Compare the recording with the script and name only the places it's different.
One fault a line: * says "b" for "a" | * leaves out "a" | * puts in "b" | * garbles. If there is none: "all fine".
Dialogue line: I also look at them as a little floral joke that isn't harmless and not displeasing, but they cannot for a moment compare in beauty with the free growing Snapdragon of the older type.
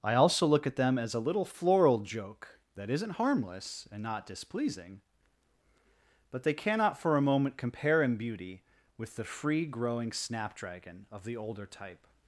all fine